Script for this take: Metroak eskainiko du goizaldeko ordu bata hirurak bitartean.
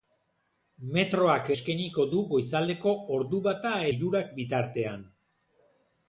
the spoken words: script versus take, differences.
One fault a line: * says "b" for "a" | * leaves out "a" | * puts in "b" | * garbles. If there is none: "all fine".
all fine